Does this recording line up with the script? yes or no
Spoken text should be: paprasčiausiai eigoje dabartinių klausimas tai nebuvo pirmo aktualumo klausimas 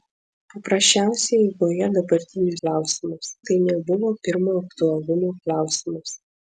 yes